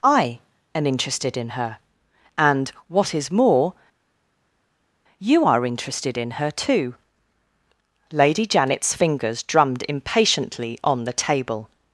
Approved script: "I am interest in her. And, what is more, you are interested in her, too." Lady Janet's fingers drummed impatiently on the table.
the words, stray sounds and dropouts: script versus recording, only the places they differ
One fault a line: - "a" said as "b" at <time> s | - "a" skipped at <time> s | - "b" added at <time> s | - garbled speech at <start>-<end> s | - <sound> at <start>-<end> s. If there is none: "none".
- "interest" said as "interested" at 0.9 s